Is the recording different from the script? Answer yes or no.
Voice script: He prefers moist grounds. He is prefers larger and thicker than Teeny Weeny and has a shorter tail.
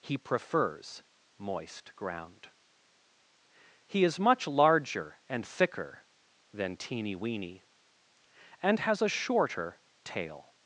yes